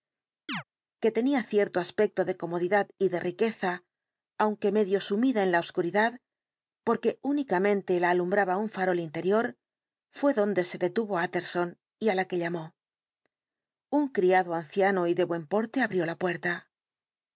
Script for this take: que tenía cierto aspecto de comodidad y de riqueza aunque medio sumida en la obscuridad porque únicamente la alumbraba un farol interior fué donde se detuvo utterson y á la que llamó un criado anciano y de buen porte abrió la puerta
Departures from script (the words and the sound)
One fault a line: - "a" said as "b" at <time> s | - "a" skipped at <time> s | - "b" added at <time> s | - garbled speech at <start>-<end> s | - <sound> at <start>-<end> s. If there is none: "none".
- chirp at 0.5-0.6 s